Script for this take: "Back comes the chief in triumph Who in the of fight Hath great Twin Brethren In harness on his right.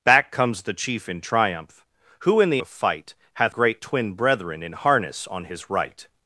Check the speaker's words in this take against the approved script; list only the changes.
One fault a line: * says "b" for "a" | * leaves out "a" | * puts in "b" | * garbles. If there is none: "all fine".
all fine